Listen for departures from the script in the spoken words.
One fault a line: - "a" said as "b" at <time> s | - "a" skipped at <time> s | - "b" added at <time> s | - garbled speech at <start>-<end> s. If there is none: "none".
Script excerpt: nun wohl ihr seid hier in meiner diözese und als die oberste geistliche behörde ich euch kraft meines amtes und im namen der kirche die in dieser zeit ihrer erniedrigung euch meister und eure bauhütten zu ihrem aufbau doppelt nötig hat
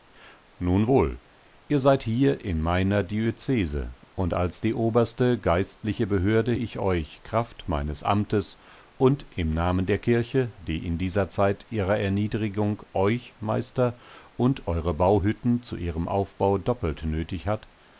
none